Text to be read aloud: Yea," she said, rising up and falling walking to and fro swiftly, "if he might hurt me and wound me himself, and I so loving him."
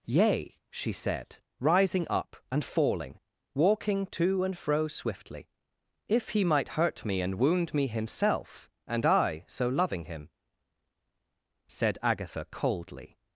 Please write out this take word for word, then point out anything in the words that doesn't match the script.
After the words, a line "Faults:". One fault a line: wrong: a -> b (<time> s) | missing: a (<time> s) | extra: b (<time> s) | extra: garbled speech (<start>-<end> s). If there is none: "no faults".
Yea," she said, rising up and falling walking to and fro swiftly, "if he might hurt me and wound me himself, and I so loving him." Said Agatha coldly
Faults:
extra: Said Agatha coldly (11.7 s)